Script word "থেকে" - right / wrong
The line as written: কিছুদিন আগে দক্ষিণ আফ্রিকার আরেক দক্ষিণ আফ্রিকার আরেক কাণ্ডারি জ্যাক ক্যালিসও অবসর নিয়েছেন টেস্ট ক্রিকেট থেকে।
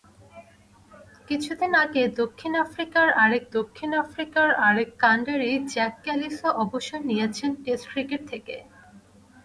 right